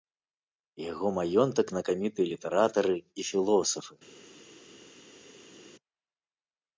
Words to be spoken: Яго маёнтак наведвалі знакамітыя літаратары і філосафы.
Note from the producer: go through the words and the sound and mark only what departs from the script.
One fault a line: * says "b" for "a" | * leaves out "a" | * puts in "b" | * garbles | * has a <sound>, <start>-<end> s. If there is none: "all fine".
* leaves out "наведвалі"